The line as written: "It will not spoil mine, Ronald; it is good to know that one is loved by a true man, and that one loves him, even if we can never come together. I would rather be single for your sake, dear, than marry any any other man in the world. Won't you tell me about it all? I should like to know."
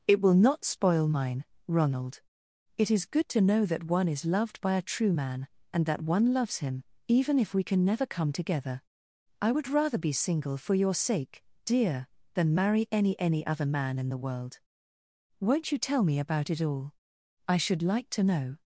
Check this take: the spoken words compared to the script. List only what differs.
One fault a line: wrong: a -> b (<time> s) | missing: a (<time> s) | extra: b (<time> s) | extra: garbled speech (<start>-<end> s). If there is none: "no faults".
no faults